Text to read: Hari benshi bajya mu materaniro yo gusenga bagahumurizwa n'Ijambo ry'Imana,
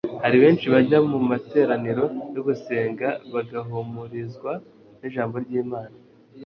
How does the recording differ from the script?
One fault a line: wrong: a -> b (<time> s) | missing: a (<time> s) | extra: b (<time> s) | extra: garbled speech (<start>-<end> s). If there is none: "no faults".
no faults